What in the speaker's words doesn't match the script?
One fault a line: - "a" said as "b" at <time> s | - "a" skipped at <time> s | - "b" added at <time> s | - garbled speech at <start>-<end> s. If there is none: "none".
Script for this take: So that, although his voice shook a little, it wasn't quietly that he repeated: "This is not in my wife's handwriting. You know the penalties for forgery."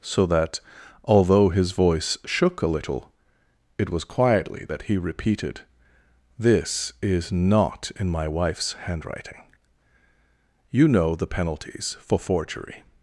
- "wasn't" said as "was" at 3.9 s